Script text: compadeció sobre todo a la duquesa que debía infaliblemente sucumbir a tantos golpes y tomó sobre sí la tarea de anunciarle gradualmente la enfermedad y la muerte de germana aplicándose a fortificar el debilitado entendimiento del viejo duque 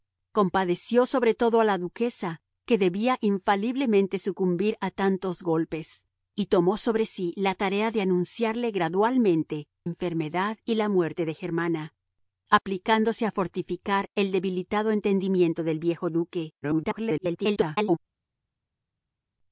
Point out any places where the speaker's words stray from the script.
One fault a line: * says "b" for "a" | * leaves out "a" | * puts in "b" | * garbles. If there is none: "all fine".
* leaves out "la"
* garbles